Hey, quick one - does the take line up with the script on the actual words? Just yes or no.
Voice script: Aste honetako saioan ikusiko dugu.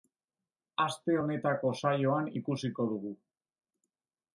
yes